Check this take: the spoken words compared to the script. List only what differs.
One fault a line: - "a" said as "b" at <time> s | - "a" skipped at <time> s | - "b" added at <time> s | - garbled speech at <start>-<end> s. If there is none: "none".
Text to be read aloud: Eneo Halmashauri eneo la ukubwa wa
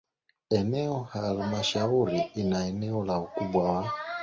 - "ina" added at 2.4 s